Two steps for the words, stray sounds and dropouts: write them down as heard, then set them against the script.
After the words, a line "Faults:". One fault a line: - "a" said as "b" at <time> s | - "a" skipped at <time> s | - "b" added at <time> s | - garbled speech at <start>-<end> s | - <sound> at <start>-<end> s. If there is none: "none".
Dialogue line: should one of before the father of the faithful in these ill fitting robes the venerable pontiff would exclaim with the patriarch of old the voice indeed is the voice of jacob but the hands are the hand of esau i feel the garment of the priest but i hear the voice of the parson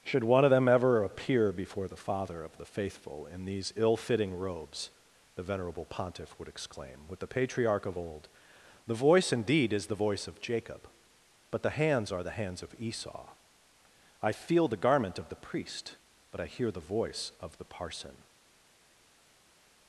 should one of them ever appear before the father of the faithful in these ill fitting robes the venerable pontiff would exclaim with the patriarch of old the voice indeed is the voice of jacob but the hands are the hands of esau i feel the garment of the priest but i hear the voice of the parson
Faults:
- "them ever appear" added at 0.5 s
- "hand" said as "hands" at 12.4 s